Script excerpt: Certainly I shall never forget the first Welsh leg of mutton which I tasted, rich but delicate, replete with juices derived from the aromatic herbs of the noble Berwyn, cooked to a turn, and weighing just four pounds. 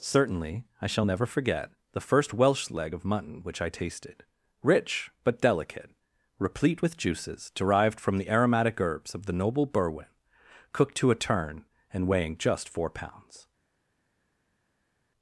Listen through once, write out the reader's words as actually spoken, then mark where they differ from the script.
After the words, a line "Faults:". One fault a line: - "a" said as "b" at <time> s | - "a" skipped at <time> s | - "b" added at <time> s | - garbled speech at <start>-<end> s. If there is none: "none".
Certainly I shall never forget the first Welsh leg of mutton which I tasted, rich but delicate, replete with juices derived from the aromatic herbs of the noble Berwyn, cooked to a turn, and weighing just four pounds.
Faults:
none